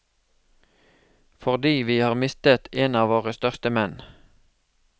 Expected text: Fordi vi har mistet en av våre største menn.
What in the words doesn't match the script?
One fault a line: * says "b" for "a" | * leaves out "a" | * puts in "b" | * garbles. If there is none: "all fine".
all fine